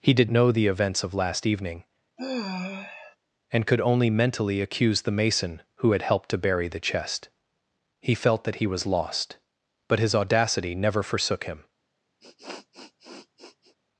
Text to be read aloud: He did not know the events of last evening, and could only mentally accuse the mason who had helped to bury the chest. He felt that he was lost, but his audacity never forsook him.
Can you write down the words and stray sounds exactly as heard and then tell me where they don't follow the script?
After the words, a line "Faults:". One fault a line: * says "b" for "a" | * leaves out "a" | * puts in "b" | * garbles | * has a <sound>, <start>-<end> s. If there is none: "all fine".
He did know the events of last evening, and could only mentally accuse the mason who had helped to bury the chest. He felt that he was lost, but his audacity never forsook him.
Faults:
* leaves out "not"
* has a sigh, 2.2-3.2 s
* has a sniff, 12.2-13.8 s